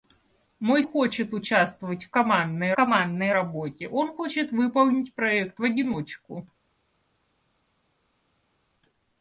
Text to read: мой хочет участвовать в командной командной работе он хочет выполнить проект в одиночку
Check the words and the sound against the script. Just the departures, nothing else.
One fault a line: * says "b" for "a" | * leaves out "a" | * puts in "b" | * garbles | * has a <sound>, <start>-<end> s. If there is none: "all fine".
all fine